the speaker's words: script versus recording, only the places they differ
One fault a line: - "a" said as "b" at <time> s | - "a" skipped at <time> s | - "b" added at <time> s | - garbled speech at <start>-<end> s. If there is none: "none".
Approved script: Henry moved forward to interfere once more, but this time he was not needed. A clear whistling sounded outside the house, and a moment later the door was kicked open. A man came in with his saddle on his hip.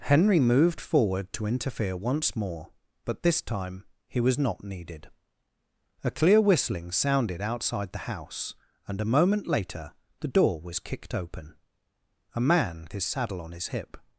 - "came in with" skipped at 12.9 s